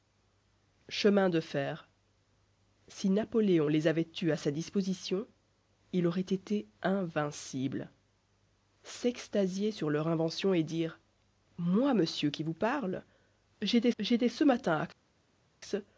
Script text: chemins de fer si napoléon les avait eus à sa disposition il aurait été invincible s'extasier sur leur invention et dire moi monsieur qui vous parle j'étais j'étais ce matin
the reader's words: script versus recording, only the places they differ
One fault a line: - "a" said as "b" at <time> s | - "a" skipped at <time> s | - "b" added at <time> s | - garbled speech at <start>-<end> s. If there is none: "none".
none